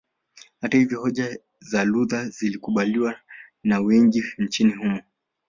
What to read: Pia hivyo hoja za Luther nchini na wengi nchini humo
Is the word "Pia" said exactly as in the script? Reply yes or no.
no